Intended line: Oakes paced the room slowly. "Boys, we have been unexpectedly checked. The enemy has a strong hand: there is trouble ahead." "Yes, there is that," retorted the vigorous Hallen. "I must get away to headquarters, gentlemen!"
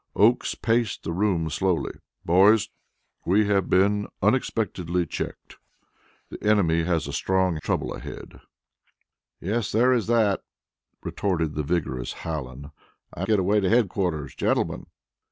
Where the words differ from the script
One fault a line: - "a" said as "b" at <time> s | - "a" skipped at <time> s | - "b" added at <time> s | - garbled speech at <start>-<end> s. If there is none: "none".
- "hand there is" skipped at 7.6 s
- "must" skipped at 13.3 s